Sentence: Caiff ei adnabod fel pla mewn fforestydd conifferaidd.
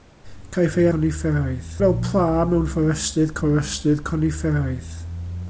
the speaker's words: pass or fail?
fail